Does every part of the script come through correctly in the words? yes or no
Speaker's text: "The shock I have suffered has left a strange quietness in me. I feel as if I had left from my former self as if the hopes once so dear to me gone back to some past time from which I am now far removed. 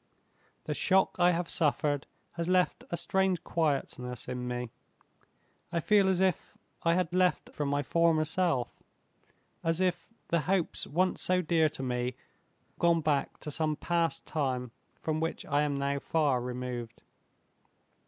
yes